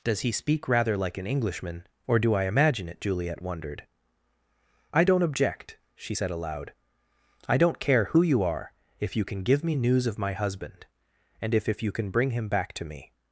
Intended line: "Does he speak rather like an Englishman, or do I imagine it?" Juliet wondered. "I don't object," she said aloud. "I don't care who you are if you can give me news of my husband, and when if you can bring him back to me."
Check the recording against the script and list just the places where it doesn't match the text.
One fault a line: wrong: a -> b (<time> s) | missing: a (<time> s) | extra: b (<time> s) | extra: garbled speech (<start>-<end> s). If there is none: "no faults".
wrong: when -> if (11.5 s)